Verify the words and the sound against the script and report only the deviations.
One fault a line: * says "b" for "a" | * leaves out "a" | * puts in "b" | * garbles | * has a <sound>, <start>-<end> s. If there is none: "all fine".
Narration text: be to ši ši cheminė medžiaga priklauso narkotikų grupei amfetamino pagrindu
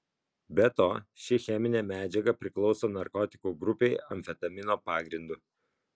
* leaves out "ši"